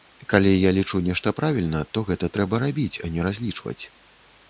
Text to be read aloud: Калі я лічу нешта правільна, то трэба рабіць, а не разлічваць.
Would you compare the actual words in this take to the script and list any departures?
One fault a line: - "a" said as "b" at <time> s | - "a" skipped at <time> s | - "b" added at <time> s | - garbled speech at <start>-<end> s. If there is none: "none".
- "гэта" added at 2.1 s